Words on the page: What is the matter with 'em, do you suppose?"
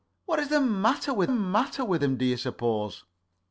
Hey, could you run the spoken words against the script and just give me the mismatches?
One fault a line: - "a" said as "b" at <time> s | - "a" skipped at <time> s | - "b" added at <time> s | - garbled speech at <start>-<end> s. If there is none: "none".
- "matter with" added at 1.3 s